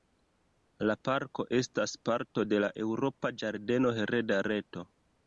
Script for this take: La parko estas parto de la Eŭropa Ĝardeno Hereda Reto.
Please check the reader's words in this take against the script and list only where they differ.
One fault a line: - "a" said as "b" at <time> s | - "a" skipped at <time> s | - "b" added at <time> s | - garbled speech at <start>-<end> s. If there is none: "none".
none